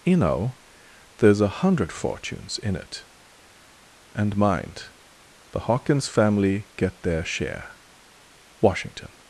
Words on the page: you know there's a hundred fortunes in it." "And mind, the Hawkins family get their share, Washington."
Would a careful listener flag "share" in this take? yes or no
no